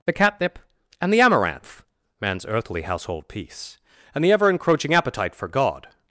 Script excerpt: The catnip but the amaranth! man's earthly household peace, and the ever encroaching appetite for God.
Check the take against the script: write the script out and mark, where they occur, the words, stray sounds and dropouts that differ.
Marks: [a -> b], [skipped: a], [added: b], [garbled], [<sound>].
The catnip [but -> and] the amaranth! man's earthly household peace, and the ever encroaching appetite for God.